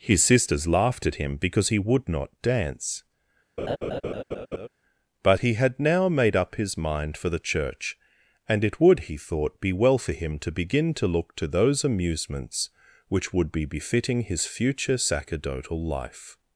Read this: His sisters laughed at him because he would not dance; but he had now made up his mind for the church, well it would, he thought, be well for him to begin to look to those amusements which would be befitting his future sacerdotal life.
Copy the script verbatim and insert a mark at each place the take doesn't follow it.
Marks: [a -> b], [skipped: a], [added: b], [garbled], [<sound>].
His sisters laughed at him because he would not dance; [laugh] but he had now made up his mind for the church, [well -> and] it would, he thought, be well for him to begin to look to those amusements which would be befitting his future sacerdotal life.